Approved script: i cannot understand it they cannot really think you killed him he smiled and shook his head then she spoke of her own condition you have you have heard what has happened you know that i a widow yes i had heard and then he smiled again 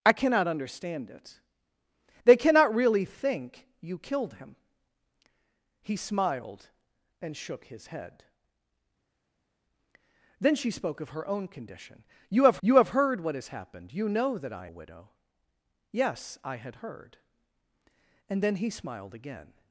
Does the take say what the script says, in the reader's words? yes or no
yes